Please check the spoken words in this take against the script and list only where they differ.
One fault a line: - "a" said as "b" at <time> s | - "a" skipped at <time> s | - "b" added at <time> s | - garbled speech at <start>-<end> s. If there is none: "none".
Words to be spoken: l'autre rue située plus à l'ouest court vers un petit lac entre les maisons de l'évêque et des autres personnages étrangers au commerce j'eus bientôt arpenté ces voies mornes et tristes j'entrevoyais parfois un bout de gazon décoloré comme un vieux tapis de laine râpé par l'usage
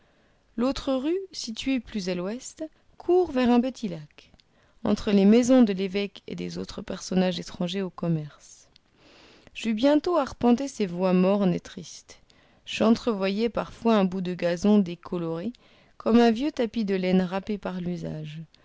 none